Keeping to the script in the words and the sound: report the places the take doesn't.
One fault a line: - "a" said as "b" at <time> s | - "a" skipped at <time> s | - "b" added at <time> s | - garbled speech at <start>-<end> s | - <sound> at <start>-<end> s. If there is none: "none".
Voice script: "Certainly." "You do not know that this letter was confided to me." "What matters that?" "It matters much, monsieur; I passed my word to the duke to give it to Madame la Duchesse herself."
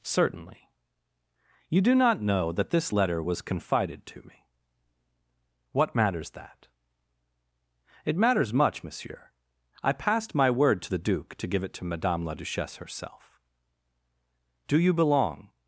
- "Do you belong" added at 14.7 s